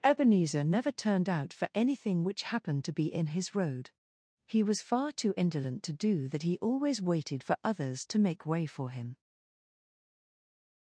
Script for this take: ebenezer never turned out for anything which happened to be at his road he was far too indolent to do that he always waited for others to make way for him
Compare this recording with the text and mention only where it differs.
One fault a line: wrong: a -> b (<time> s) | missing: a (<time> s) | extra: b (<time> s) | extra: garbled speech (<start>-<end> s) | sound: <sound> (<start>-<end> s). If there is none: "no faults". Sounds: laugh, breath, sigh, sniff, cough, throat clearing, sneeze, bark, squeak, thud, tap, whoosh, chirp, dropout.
wrong: at -> in (3.1 s)